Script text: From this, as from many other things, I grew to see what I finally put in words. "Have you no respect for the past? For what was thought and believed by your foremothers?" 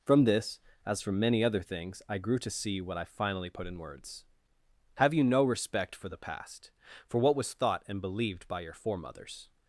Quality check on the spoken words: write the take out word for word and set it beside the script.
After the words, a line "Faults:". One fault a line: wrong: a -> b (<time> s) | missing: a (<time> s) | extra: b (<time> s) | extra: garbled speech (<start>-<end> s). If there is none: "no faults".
From this, as from many other things, I grew to see what I finally put in words. "Have you no respect for the past? For what was thought and believed by your foremothers?"
Faults:
no faults